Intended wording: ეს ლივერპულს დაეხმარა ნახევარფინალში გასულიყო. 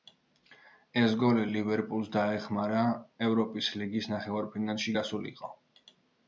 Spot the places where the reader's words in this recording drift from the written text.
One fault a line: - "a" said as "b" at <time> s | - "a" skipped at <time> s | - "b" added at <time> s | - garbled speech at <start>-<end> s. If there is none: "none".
- "გოლი" added at 1.2 s
- "ევროპის ლიგის" added at 3.3 s